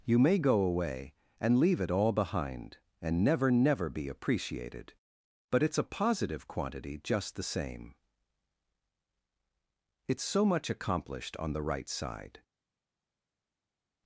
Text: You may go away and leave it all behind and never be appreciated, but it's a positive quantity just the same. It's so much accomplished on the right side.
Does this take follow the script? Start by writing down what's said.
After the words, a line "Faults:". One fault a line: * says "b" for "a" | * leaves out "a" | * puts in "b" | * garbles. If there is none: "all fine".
You may go away and leave it all behind and never never be appreciated, but it's a positive quantity just the same. It's so much accomplished on the right side.
Faults:
* puts in "never"